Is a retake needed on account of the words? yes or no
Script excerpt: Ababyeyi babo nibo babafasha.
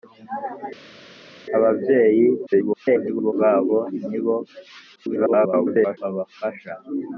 yes